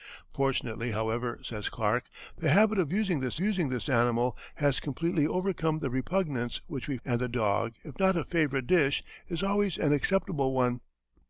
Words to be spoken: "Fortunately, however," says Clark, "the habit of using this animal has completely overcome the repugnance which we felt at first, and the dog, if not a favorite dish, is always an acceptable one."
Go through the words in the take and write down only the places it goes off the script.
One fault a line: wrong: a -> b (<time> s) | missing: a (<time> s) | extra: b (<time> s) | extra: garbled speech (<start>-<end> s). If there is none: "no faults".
extra: using this (3.4 s)
missing: felt at first (7.0 s)